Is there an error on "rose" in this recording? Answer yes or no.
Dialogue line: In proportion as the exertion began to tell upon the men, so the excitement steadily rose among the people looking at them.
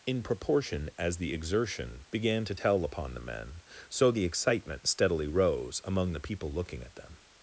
no